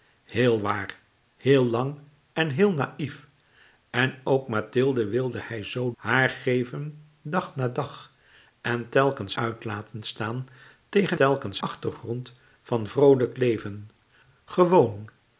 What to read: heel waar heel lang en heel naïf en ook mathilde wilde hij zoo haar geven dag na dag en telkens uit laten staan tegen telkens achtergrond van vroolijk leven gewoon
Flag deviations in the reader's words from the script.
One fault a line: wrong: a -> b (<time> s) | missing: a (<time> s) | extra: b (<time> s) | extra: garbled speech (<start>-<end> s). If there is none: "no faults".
no faults